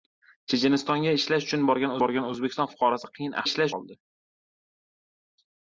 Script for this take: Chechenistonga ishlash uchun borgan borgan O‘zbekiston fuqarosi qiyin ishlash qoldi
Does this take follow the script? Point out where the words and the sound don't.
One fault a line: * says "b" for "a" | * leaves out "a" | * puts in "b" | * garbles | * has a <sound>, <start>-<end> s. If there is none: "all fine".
all fine